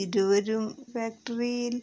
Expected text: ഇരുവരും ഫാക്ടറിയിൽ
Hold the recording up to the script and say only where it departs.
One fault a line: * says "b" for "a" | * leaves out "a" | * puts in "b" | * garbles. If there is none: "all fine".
all fine